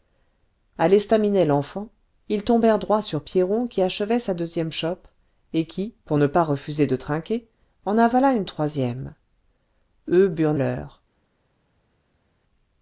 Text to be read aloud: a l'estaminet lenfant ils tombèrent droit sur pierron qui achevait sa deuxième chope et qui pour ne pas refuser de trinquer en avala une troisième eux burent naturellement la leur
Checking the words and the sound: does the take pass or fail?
fail